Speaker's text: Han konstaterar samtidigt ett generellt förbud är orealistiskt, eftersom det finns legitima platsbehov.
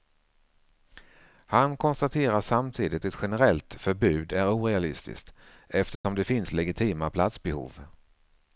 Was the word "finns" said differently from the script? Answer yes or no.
no